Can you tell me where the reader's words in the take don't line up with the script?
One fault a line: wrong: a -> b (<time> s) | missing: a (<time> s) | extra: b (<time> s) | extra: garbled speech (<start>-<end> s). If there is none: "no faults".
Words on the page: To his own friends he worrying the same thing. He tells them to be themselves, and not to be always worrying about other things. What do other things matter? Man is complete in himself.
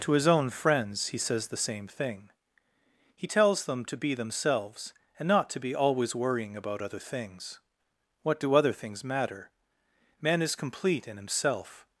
wrong: worrying -> says (1.2 s)